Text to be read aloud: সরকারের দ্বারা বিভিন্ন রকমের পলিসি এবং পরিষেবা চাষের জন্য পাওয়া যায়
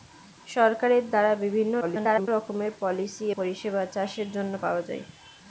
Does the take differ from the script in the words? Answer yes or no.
yes